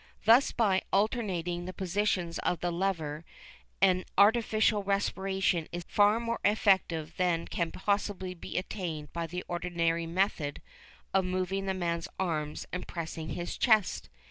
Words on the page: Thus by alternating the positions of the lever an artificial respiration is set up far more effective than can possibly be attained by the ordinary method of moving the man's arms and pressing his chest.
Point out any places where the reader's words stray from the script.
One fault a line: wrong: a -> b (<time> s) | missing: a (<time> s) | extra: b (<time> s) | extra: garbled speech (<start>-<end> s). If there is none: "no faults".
missing: set up (5.8 s)